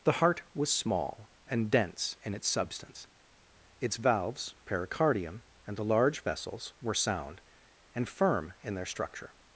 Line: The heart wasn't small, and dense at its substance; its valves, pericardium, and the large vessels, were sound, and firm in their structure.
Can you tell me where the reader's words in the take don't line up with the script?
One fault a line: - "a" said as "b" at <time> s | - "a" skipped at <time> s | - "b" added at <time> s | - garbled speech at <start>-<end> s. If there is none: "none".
- "wasn't" said as "was" at 0.5 s
- "at" said as "in" at 2.2 s